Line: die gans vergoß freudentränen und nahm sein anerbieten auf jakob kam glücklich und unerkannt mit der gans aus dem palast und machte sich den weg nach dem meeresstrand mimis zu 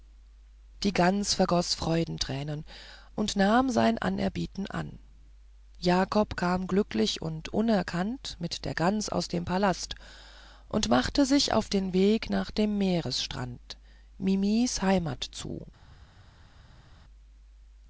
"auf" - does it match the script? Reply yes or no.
no